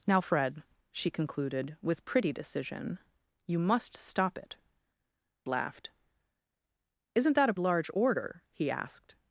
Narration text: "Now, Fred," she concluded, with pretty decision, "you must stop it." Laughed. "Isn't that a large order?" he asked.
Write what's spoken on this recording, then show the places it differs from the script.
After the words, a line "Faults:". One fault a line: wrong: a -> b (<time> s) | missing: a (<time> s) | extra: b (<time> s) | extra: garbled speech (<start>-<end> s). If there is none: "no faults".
"Now, Fred," she concluded, with pretty decision, "you must stop it." Laughed. "Isn't that a large order?" he asked.
Faults:
no faults